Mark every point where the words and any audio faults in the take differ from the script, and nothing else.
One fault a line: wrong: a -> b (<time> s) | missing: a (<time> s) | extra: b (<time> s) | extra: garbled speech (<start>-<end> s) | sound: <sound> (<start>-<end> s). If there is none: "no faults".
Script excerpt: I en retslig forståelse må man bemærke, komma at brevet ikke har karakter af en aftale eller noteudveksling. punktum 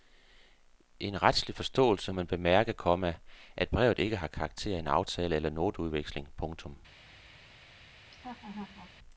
missing: må (2.1 s)
sound: laugh (8.1-8.9 s)